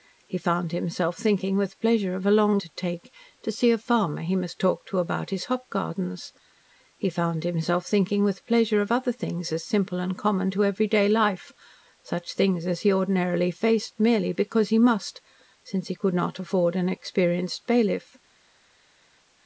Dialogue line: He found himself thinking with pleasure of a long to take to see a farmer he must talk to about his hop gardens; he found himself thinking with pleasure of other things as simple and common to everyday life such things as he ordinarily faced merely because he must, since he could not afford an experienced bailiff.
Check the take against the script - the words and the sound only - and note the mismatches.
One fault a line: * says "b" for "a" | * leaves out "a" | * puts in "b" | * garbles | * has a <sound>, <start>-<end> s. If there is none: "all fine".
all fine